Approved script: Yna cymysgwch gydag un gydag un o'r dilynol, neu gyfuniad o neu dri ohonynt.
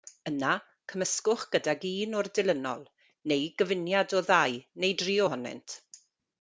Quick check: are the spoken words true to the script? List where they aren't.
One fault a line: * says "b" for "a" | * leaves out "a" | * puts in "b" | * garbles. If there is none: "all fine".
* leaves out "gydag un"
* puts in "ddau"